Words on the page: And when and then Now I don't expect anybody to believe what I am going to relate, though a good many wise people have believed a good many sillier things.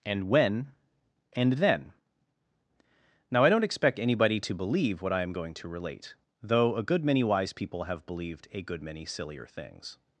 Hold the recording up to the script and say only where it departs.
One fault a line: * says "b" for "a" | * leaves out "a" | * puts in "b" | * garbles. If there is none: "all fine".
all fine